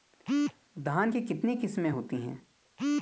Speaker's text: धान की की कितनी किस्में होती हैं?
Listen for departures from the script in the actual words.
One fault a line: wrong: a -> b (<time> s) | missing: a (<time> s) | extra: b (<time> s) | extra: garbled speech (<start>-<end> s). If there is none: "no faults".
missing: की (1.2 s)